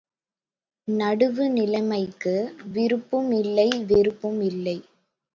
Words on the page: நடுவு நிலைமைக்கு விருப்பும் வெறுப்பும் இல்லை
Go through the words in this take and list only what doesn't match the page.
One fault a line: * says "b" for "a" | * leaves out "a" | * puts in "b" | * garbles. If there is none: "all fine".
* puts in "இல்லை"